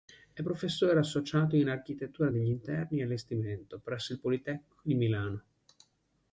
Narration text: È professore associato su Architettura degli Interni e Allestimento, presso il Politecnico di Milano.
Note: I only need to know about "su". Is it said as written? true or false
false